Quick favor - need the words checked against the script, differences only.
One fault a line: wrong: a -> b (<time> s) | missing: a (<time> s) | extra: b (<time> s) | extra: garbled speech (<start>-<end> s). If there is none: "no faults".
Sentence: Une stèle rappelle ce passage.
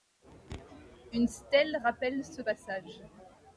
no faults